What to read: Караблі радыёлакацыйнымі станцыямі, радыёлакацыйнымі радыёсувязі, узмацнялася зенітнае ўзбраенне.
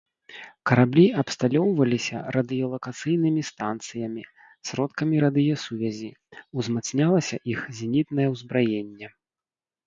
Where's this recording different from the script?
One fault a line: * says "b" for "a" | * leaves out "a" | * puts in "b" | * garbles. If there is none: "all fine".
* puts in "абсталёўваліся"
* says "сродкамі" for "радыёлакацыйнымі"
* puts in "іх"